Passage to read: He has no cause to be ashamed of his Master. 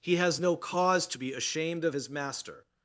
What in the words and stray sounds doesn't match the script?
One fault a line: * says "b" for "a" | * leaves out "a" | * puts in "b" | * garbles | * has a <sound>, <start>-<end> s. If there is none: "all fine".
all fine